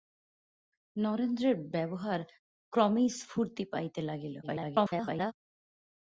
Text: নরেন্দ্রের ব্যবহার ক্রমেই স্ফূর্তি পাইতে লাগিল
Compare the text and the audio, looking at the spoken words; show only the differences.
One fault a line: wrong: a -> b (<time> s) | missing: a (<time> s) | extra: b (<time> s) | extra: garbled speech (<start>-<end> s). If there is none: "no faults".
extra: garbled speech (4.4-5.3 s)